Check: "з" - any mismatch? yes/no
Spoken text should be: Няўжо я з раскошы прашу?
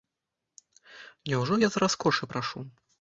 no